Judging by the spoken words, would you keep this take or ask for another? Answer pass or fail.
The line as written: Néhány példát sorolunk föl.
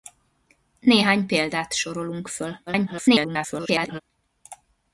fail